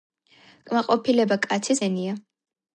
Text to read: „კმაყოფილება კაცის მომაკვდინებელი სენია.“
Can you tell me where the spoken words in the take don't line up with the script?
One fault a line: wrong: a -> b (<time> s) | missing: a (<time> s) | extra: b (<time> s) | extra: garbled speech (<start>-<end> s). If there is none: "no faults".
missing: მომაკვდინებელი (1.9 s)